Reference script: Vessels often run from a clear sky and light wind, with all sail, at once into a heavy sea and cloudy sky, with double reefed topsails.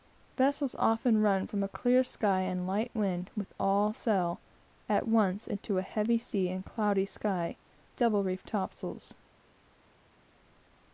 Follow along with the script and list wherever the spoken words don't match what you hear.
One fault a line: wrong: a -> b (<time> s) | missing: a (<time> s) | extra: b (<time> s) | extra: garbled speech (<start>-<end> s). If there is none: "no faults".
missing: with (7.6 s)